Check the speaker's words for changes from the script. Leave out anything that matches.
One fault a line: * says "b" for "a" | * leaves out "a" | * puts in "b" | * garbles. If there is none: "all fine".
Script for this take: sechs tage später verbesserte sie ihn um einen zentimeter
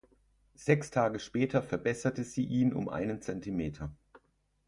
all fine